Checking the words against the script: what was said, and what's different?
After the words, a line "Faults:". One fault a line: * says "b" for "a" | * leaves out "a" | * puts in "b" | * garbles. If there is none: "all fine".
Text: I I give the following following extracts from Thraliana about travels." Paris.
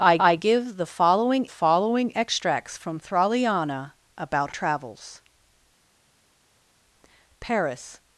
I I give the following following extracts from Thraliana about travels." Paris.
Faults:
all fine